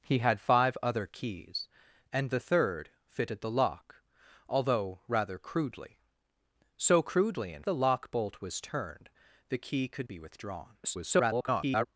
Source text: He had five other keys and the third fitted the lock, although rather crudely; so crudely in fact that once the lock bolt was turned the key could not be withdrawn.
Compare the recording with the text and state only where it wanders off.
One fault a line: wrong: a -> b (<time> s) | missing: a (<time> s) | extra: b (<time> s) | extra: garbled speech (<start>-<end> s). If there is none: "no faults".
missing: fact that once (7.6 s)
missing: not (10.1 s)
extra: garbled speech (10.8-11.9 s)